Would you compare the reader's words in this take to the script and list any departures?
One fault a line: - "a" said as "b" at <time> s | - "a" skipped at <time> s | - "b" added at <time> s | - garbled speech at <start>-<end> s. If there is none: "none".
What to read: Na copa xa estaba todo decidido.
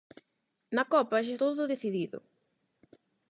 - "estaba" skipped at 1.3 s